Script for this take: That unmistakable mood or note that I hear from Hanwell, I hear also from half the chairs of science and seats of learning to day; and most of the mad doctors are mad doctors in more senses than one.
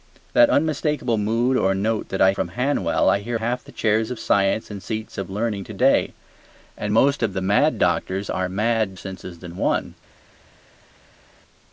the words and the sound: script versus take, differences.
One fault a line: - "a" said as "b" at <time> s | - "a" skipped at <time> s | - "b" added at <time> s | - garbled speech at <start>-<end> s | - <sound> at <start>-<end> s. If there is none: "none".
- "hear" skipped at 2.3 s
- "also from" skipped at 3.4 s
- "doctors in more" skipped at 8.9 s